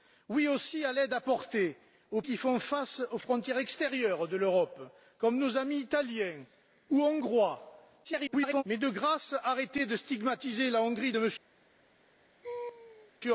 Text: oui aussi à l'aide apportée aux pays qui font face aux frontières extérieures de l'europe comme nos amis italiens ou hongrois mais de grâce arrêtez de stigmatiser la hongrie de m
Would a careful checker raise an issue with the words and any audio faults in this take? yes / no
yes